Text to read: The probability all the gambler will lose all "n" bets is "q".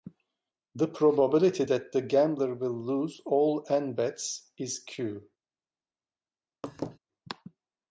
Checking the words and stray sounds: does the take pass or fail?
fail